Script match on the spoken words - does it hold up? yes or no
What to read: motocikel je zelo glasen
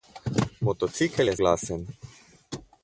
no